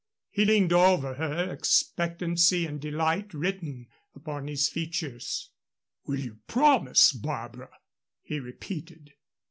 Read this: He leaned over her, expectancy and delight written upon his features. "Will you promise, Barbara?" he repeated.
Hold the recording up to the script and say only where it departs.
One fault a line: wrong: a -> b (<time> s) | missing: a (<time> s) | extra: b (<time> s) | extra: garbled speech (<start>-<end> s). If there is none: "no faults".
no faults